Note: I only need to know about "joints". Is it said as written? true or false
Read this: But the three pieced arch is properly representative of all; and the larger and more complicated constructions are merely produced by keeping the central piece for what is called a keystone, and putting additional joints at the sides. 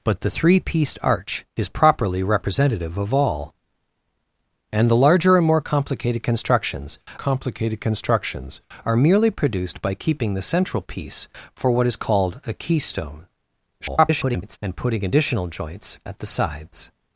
true